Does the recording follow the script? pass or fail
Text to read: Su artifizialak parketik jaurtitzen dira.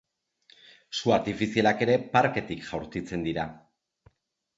fail